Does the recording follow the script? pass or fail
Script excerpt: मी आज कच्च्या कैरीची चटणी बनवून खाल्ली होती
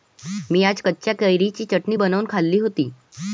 pass